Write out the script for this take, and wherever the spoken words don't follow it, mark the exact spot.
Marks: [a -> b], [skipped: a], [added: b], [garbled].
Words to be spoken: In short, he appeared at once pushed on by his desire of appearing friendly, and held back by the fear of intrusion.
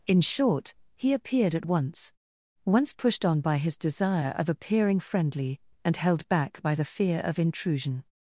In short, he appeared at once [added: once] pushed on by his desire of appearing friendly, and held back by the fear of intrusion.